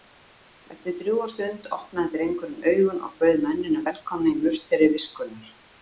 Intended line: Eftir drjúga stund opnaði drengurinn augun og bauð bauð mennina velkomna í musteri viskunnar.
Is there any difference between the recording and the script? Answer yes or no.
yes